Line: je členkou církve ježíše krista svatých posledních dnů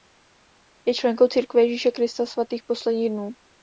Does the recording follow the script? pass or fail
pass